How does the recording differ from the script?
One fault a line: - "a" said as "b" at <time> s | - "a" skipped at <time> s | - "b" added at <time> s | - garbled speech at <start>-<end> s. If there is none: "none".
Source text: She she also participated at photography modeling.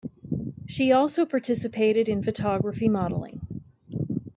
- "she" skipped at 0.9 s
- "at" said as "in" at 2.1 s